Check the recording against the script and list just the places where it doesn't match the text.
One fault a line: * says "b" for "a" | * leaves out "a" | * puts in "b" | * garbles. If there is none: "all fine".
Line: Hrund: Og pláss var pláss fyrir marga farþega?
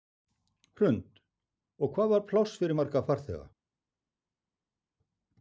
* says "hvað" for "pláss"